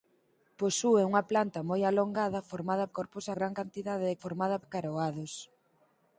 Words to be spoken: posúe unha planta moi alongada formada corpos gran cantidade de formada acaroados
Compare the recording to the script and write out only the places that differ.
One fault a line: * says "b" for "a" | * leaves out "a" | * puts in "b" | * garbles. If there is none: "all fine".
all fine